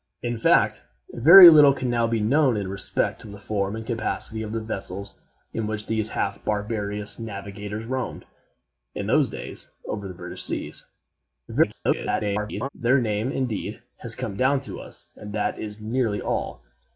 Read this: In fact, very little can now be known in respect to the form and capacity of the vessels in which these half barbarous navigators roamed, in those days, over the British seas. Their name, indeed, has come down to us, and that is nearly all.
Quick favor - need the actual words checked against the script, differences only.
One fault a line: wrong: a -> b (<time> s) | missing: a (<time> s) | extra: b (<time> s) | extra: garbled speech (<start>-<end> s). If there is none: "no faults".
extra: garbled speech (11.5-12.7 s)